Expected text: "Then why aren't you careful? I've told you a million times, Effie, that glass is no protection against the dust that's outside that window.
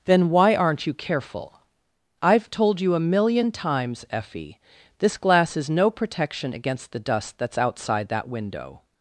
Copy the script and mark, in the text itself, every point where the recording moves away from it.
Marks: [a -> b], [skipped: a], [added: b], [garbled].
"Then why aren't you careful? I've told you a million times, Effie, [that -> this] glass is no protection against the dust that's outside that window.